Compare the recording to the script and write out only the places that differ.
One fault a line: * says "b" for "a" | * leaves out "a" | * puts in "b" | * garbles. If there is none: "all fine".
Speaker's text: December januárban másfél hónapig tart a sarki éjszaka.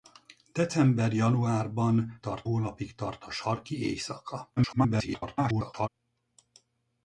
* says "tart" for "másfél"
* garbles